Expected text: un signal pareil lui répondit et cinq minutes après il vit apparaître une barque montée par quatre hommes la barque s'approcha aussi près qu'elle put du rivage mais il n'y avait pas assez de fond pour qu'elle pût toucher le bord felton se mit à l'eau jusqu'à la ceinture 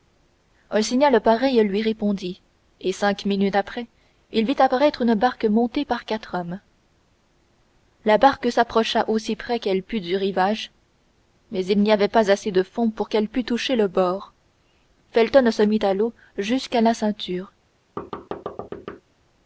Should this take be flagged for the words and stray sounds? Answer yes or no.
yes